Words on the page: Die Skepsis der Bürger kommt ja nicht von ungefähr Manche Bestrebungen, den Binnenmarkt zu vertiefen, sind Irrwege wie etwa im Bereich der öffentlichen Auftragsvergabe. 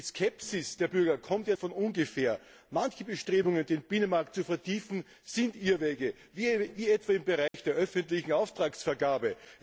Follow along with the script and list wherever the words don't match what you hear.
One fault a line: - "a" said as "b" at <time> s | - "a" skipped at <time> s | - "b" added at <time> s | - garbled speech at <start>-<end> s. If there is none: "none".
- "nicht" skipped at 1.6 s